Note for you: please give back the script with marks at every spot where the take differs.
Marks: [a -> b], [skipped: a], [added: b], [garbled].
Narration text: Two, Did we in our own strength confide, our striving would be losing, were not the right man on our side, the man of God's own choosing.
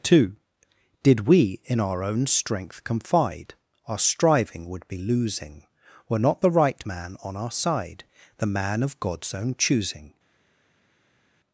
Two, Did we in our own strength confide, our striving would be losing, were not the right man on our side, the man of God's own choosing.